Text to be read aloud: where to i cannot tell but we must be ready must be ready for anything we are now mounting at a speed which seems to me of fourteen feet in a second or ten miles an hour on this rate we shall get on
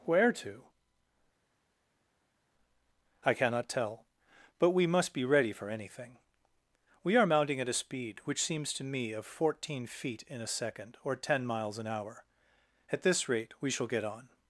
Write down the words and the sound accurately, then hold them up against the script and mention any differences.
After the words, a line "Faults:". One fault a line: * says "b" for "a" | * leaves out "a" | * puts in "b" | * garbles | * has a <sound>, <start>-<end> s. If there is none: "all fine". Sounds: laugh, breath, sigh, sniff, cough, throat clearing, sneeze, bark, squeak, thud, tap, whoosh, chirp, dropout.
where to i cannot tell but we must be ready for anything we are mounting at a speed which seems to me of fourteen feet in a second or ten miles an hour at this rate we shall get on
Faults:
* leaves out "must be ready"
* leaves out "now"
* says "at" for "on"